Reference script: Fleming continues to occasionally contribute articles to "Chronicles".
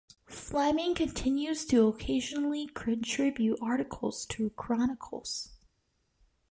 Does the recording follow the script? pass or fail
pass